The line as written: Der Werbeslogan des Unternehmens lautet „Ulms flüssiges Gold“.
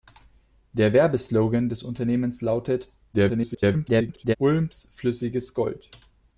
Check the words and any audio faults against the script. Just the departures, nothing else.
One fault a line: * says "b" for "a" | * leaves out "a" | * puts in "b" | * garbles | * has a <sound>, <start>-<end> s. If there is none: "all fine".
* garbles